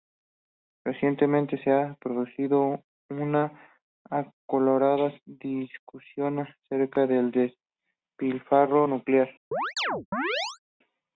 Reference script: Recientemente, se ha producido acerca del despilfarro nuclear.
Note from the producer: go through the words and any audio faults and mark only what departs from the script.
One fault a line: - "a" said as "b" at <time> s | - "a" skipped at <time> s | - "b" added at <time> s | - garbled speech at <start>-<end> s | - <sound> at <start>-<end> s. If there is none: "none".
- "una acalorada discusión" added at 3.1 s
- chirp at 9.5-10.6 s